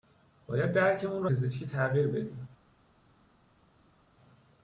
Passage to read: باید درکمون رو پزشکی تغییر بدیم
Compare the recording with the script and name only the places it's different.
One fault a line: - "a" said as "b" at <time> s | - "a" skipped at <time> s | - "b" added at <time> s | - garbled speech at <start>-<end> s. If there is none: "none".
none